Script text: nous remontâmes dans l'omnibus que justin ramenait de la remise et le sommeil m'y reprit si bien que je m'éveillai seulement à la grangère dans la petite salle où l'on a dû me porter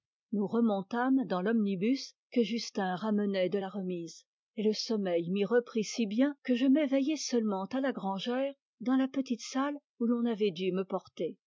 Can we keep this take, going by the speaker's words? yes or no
no